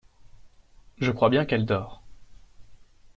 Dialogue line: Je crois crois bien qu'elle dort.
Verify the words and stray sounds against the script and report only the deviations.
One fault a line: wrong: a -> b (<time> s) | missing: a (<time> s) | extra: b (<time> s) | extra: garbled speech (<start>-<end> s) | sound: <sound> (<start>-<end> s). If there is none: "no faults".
missing: crois (1.3 s)